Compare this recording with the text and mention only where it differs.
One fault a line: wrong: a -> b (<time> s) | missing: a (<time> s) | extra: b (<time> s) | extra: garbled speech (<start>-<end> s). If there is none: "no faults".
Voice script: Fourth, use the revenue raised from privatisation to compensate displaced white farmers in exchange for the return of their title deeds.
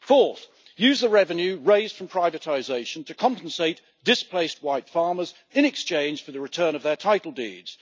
no faults